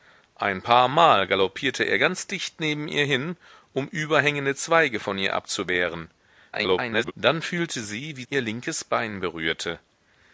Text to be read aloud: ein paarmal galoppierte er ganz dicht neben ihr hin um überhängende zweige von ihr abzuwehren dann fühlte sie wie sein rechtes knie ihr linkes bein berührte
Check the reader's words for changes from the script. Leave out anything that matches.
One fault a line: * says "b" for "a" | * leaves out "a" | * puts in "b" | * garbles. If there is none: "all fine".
* garbles
* leaves out "sein rechtes knie"